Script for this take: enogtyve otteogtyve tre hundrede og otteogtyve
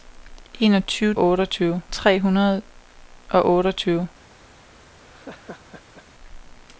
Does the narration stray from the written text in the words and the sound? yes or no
yes